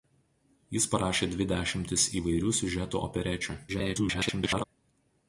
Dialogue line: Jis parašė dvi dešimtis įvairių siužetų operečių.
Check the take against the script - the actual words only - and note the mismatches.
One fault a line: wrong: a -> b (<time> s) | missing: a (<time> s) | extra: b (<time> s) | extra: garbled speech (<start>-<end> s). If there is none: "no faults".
extra: garbled speech (3.7-4.6 s)